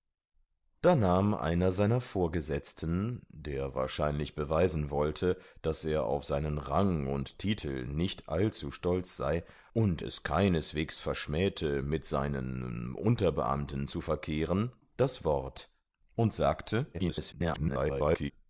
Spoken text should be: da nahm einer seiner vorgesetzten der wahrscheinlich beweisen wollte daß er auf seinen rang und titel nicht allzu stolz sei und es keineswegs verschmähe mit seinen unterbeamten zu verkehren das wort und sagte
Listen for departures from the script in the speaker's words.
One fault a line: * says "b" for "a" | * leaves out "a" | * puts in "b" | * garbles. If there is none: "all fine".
* garbles